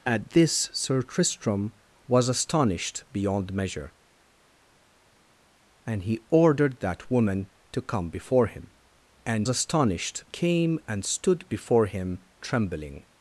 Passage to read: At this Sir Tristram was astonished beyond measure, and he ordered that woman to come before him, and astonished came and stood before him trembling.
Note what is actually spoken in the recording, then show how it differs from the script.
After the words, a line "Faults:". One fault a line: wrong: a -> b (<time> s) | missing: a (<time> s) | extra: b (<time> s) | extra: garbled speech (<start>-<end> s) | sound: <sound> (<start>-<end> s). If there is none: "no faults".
At this Sir Tristram was astonished beyond measure, and he ordered that woman to come before him, and astonished came and stood before him trembling.
Faults:
no faults